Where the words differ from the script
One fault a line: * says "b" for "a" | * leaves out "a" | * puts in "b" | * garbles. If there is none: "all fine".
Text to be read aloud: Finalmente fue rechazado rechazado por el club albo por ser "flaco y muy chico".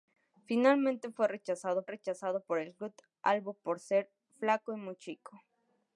all fine